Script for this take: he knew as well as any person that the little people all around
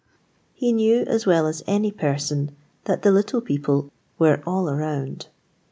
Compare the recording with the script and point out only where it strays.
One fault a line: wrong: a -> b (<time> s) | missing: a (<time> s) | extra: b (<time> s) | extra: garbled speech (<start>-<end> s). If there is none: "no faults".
extra: were (4.2 s)